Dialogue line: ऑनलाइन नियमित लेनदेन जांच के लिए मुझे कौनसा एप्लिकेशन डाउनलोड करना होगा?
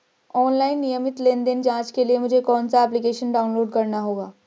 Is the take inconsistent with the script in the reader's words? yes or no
no